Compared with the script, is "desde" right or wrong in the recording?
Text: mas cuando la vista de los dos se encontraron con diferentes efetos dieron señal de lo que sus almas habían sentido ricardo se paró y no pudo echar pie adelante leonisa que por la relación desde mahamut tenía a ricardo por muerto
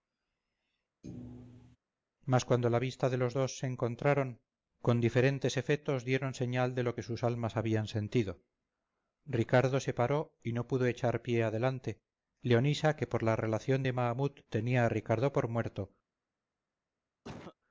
wrong